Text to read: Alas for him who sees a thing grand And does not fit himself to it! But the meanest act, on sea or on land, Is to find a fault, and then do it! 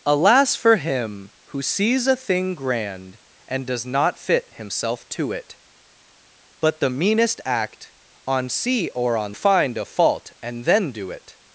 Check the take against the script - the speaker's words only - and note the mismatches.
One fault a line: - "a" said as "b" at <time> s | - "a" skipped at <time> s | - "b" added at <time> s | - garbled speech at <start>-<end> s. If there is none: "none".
- "land Is to" skipped at 9.3 s